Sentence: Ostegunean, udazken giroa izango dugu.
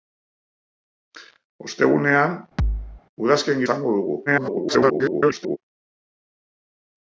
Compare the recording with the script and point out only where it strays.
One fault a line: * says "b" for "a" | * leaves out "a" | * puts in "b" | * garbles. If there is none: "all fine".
* leaves out "giroa"
* garbles